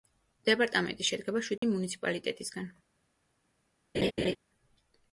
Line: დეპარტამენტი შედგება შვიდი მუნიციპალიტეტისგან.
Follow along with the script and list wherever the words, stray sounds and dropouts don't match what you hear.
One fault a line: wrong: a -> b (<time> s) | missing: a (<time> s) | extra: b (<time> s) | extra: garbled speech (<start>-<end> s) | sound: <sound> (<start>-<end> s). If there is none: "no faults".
sound: dropout (1.6-1.6 s)
sound: laugh (3.9-4.4 s)